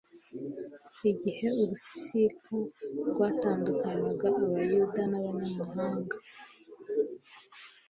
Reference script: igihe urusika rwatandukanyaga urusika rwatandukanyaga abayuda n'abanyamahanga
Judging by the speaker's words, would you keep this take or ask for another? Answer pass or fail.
fail